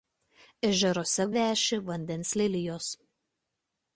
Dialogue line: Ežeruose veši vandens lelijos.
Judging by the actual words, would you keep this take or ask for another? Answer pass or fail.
pass